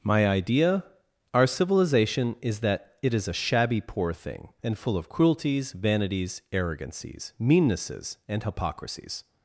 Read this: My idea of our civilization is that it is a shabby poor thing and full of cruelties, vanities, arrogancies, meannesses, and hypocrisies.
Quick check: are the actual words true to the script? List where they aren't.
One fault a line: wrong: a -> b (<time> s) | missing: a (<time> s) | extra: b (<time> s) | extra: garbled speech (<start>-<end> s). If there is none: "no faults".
missing: of (0.8 s)